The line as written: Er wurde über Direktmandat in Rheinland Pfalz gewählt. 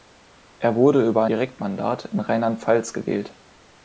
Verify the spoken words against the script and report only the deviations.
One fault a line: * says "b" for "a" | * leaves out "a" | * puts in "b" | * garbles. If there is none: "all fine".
all fine